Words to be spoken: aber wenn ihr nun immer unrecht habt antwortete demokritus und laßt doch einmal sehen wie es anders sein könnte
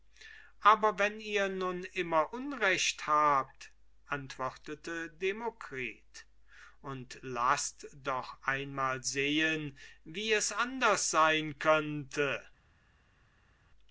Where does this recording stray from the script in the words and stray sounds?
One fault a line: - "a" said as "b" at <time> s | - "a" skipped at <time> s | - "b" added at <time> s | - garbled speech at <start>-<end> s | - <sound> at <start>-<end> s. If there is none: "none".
none